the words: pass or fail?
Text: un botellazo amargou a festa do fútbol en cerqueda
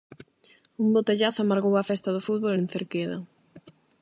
pass